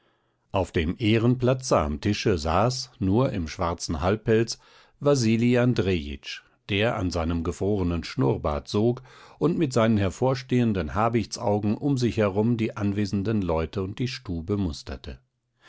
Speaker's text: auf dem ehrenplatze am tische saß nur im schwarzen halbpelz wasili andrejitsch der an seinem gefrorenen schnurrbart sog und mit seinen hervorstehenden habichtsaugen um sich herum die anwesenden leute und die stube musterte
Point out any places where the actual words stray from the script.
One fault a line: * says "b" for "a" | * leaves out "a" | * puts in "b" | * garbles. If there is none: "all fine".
all fine